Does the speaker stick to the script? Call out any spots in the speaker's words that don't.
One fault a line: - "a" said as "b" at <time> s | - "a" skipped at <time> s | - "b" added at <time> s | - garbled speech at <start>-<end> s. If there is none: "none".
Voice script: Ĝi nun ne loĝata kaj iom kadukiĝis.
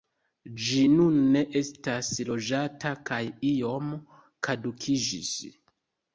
- "estas" added at 1.6 s